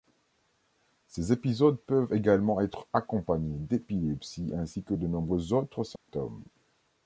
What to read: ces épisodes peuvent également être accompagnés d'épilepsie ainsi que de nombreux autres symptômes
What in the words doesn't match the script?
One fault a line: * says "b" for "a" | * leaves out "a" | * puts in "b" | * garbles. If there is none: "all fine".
all fine